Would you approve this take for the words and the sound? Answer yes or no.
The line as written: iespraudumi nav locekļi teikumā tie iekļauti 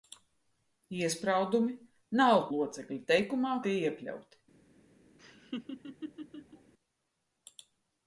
no